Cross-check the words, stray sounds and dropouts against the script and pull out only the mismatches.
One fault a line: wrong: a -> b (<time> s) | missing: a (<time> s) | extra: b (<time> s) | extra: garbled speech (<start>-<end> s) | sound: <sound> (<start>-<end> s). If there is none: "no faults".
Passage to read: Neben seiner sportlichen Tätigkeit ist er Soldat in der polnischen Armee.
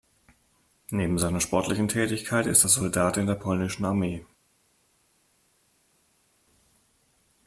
no faults